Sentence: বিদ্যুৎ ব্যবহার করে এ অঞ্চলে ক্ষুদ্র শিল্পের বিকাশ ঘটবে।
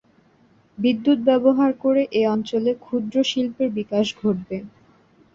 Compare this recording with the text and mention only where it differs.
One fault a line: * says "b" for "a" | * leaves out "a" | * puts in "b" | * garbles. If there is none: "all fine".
all fine